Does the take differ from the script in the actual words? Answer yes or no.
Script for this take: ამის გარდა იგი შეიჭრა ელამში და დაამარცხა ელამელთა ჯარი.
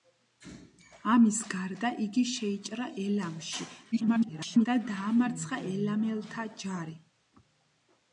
yes